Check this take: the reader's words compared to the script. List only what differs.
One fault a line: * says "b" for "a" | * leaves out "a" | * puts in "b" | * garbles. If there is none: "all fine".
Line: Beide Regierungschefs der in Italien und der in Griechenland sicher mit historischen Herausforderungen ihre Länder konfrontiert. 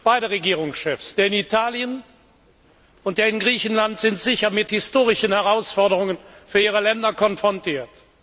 * puts in "sind"
* puts in "für"